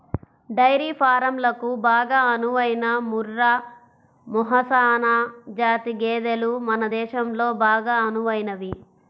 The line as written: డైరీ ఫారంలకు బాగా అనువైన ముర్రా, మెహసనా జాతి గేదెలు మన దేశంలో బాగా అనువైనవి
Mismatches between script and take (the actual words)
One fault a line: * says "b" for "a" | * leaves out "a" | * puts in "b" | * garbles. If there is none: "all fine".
all fine